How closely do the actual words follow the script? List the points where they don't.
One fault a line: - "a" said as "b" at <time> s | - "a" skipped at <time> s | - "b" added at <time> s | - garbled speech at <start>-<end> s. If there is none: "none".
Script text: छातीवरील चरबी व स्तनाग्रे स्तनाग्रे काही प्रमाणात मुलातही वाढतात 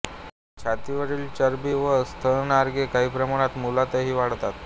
- "स्तनाग्रे" skipped at 2.9 s